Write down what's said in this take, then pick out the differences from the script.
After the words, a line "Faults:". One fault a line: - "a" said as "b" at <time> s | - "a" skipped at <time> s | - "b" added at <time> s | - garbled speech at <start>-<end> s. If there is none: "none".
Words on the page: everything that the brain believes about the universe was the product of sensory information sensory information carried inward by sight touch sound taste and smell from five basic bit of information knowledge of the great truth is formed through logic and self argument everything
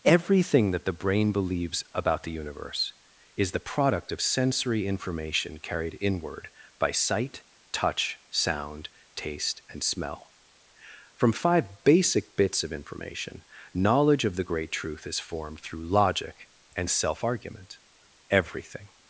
everything that the brain believes about the universe is the product of sensory information carried inward by sight touch sound taste and smell from five basic bits of information knowledge of the great truth is formed through logic and self argument everything
Faults:
- "was" said as "is" at 3.4 s
- "sensory information" skipped at 5.6 s
- "bit" said as "bits" at 12.4 s